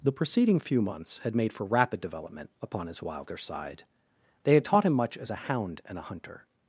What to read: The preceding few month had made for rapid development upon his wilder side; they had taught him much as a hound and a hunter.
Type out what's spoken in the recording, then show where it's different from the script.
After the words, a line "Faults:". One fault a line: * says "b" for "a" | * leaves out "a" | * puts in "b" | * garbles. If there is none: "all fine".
The preceding few months had made for rapid development upon his wilder side; they had taught him much as a hound and a hunter.
Faults:
* says "months" for "month"